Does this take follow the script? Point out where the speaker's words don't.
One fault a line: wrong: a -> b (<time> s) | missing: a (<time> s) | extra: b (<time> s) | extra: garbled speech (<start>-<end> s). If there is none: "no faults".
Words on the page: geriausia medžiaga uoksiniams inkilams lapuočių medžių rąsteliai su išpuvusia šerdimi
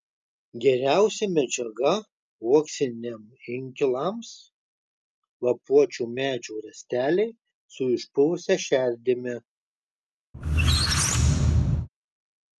no faults